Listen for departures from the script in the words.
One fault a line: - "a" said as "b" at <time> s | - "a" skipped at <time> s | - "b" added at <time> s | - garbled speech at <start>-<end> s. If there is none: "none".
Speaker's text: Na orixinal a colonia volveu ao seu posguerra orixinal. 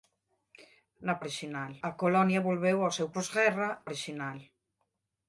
none